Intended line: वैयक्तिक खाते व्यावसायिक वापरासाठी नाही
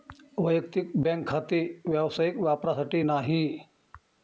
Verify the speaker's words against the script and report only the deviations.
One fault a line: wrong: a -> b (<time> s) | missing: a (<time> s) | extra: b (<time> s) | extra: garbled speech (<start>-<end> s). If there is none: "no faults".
extra: बँक (1.0 s)